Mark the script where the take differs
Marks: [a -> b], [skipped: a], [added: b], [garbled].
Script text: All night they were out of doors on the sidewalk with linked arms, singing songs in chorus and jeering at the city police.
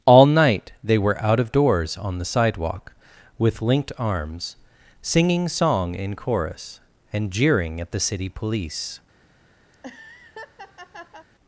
All night they were out of doors on the sidewalk with linked arms, singing [songs -> song] in chorus and jeering at the city police.